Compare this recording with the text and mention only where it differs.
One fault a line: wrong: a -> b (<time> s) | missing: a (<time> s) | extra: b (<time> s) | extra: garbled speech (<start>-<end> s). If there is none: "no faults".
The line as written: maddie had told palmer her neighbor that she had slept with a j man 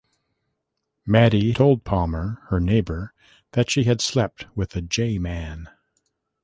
missing: had (1.5 s)